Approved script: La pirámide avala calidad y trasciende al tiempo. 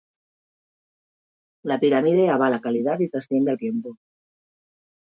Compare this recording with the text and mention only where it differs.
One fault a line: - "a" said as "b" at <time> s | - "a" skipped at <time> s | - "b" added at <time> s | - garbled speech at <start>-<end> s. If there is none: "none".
none